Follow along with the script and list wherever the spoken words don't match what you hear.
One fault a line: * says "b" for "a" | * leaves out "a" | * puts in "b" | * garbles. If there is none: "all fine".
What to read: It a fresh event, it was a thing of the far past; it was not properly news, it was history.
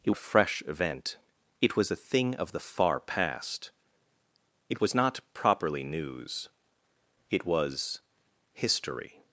all fine